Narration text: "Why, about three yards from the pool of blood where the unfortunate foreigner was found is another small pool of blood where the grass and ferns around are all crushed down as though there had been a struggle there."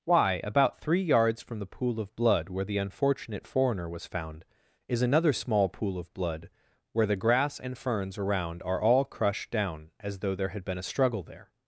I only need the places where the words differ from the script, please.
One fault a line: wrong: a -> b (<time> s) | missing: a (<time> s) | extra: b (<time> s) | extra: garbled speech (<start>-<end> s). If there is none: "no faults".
no faults